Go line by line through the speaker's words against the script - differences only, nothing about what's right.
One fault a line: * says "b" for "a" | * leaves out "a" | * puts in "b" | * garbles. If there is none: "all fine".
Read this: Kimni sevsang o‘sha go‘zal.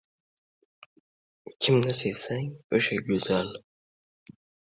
all fine